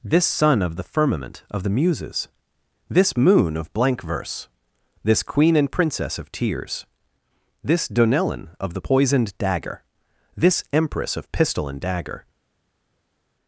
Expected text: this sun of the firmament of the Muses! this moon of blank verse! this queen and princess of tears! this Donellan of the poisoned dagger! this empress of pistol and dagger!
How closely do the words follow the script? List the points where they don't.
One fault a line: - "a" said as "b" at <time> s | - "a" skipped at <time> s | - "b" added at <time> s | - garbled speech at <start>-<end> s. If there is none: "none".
none